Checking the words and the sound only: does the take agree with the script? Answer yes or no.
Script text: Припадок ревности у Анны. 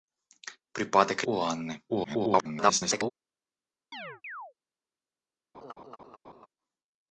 no